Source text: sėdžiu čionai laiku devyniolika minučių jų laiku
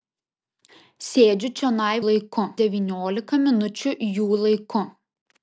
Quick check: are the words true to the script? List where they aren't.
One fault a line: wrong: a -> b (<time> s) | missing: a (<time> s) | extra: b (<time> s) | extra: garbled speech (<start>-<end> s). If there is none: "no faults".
no faults